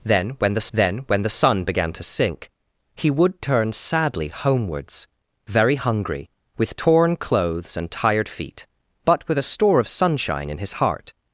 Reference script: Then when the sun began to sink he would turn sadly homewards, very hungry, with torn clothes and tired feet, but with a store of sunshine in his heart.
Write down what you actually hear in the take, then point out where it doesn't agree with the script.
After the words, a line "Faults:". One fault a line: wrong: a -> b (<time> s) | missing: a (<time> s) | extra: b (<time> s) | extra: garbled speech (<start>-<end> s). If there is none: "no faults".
Then when the then when the sun began to sink he would turn sadly homewards, very hungry, with torn clothes and tired feet, but with a store of sunshine in his heart.
Faults:
extra: then when the (0.7 s)